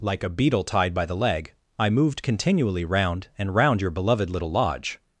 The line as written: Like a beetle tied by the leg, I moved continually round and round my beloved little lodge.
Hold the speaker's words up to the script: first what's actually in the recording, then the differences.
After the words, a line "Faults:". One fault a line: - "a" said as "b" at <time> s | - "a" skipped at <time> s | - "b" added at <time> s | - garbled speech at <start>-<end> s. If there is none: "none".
Like a beetle tied by the leg, I moved continually round and round your beloved little lodge.
Faults:
- "my" said as "your" at 3.8 s